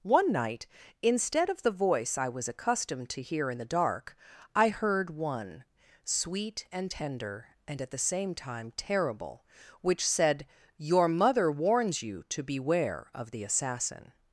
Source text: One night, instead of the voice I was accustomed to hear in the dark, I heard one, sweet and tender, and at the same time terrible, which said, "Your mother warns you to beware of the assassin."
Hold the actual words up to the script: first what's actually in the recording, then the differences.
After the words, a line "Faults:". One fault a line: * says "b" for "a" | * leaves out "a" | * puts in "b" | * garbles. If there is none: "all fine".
One night, instead of the voice I was accustomed to hear in the dark, I heard one, sweet and tender, and at the same time terrible, which said, "Your mother warns you to beware of the assassin."
Faults:
all fine